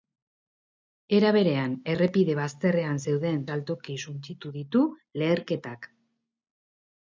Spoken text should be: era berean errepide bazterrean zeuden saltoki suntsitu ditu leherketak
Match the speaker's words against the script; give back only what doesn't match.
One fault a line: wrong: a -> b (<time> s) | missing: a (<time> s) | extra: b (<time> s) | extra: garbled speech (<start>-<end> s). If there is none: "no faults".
no faults